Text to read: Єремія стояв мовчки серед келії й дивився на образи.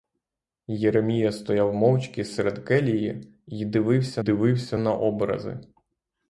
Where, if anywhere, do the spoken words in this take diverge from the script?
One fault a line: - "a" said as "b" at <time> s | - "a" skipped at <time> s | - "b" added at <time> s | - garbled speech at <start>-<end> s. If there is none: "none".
- "дивився" added at 4.2 s